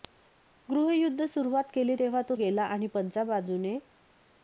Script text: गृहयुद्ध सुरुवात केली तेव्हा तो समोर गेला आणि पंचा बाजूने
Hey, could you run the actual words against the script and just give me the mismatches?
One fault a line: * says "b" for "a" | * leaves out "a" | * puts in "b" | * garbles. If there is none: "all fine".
* leaves out "समोर"